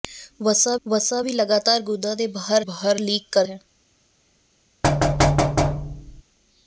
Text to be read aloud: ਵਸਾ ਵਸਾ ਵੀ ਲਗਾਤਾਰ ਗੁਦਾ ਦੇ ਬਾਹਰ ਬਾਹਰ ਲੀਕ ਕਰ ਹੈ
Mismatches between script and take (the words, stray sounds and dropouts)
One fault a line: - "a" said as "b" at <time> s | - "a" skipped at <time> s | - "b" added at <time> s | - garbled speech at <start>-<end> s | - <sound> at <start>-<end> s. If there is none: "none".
- thud at 4.8-6.2 s